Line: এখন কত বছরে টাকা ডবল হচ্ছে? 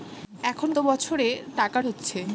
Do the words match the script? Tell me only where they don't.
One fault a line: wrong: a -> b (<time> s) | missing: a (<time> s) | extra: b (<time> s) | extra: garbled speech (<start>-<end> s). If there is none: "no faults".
missing: কত (0.7 s)
missing: ডবল (1.8 s)